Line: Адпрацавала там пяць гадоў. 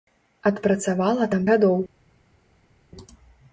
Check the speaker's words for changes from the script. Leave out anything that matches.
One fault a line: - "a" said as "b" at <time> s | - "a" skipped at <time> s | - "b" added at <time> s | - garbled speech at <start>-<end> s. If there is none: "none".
- "пяць" skipped at 1.5 s